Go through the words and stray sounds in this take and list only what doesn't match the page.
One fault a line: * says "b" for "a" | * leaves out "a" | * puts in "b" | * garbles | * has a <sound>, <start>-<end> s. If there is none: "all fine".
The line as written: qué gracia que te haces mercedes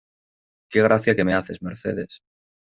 * says "me" for "te"